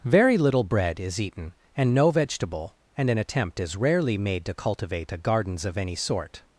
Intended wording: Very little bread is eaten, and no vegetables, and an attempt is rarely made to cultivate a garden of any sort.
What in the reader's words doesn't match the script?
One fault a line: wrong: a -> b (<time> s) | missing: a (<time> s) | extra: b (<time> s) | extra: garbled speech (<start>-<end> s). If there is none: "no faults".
wrong: vegetables -> vegetable (2.1 s)
wrong: garden -> gardens (5.2 s)